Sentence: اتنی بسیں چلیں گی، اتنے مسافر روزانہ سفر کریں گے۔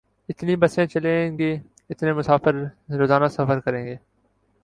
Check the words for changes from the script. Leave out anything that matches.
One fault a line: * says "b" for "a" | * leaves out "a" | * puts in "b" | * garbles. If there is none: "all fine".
all fine